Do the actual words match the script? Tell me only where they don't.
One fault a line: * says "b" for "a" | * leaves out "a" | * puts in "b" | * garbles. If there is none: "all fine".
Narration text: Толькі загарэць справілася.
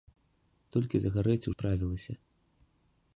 all fine